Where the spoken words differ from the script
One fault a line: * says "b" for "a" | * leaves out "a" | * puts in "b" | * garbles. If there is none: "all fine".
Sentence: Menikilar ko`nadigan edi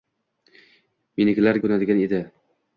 all fine